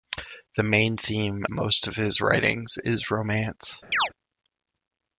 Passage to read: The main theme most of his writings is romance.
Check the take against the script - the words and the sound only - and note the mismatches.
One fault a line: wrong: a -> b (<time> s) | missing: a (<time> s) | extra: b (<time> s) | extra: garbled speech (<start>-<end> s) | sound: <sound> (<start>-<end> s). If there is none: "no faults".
sound: chirp (3.9-4.1 s)